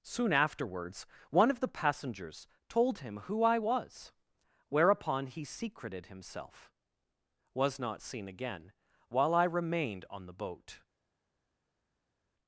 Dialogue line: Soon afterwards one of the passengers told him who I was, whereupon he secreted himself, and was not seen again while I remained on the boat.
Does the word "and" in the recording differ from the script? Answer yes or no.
yes